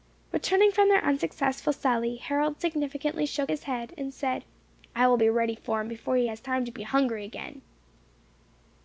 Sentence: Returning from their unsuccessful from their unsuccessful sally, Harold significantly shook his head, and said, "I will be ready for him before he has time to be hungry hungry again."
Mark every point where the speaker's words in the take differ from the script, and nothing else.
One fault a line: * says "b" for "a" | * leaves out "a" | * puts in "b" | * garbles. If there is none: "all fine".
* leaves out "from their unsuccessful"
* leaves out "hungry"